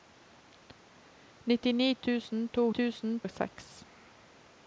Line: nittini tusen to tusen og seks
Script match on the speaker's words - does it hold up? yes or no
yes